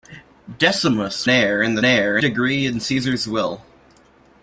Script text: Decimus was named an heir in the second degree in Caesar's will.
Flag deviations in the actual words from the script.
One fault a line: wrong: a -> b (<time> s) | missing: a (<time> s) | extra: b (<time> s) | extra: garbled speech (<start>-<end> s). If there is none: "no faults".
missing: was named an (1.3 s)
wrong: second -> heir (1.8 s)